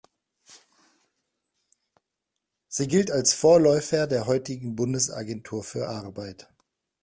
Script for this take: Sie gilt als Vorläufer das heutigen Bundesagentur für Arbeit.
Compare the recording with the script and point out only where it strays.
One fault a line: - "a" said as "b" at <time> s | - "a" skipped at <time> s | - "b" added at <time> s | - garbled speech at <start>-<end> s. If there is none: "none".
- "das" said as "der" at 4.1 s